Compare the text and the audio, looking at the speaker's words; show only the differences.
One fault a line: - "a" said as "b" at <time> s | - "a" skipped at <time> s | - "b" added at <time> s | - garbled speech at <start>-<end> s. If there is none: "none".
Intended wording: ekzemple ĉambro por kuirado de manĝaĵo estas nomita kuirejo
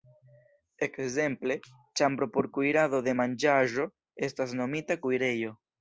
none